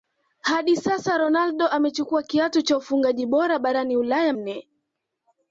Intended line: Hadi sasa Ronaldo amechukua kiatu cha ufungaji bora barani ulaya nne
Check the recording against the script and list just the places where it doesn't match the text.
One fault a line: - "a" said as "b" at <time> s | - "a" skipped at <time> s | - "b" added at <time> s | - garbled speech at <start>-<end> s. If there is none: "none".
none